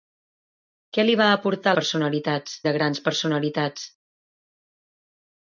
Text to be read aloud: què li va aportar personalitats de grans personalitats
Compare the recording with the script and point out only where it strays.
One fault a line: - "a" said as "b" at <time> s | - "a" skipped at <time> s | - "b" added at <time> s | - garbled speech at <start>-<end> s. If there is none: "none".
none